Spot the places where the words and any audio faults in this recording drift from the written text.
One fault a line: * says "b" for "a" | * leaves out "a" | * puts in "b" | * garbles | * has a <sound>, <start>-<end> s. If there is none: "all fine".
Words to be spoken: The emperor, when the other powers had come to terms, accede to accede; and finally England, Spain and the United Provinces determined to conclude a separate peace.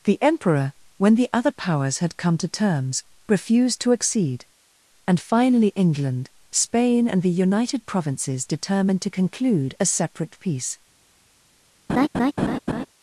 * says "refused" for "accede"
* has a laugh, 11.9-12.9 s